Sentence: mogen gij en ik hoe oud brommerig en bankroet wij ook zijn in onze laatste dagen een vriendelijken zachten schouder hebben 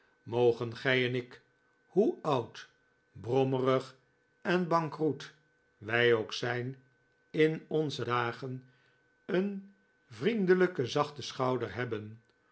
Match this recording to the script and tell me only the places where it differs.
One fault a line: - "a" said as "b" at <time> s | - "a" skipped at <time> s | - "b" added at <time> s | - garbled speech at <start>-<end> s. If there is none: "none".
- "laatste" skipped at 8.1 s